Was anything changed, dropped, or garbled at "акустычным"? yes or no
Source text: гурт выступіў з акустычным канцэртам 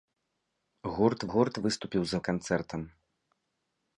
yes